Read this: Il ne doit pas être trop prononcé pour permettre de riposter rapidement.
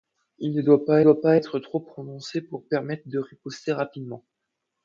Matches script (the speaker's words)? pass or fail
fail